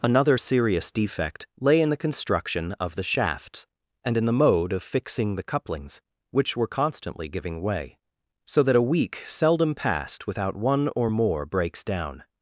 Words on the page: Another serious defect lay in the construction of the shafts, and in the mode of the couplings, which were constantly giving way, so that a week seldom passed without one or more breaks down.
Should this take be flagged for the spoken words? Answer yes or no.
yes